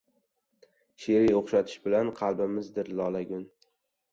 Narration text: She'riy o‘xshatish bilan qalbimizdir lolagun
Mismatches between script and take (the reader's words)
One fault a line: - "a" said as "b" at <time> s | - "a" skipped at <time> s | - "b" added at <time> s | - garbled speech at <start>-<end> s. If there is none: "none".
none